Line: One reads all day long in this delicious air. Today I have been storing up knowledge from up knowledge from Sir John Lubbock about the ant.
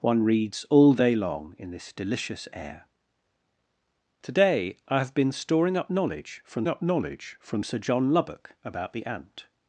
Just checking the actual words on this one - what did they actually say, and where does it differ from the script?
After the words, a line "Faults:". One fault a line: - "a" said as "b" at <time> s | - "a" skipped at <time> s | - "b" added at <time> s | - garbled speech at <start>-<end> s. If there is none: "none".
One reads all day long in this delicious air. Today I have been storing up knowledge from up knowledge from Sir John Lubbock about the ant.
Faults:
none